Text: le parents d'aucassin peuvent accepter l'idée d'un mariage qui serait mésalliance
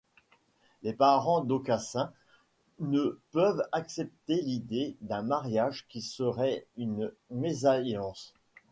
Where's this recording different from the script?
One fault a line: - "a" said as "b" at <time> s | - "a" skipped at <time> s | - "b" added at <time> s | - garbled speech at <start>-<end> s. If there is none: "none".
- "le" said as "les" at 0.8 s
- "ne" added at 2.8 s
- "une" added at 6.8 s